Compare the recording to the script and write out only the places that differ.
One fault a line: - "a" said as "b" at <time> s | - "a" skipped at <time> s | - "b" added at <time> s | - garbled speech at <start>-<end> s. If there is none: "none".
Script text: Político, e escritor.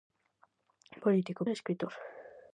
none